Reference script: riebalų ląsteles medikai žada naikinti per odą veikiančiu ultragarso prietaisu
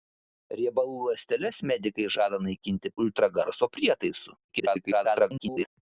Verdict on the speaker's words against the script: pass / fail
fail